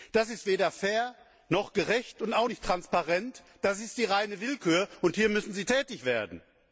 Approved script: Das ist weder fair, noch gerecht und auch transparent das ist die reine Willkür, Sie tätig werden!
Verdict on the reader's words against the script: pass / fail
fail